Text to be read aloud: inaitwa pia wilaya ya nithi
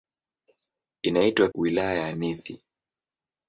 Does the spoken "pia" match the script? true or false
false